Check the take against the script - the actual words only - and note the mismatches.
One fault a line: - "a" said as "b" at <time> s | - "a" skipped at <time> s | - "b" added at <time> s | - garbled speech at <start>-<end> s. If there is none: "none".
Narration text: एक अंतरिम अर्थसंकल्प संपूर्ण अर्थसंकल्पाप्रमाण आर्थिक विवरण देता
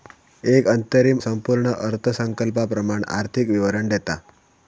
- "अर्थसंकल्प" skipped at 1.2 s